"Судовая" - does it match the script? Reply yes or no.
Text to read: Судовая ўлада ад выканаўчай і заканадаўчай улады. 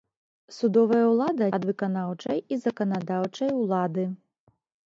yes